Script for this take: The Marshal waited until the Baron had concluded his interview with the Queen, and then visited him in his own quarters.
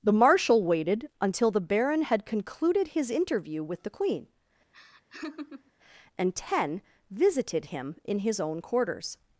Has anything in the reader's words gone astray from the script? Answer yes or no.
yes